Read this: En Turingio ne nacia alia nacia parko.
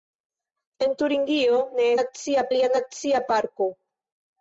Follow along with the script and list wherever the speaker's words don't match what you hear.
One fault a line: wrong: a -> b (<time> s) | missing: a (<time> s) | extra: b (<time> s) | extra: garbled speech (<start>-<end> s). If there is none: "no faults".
no faults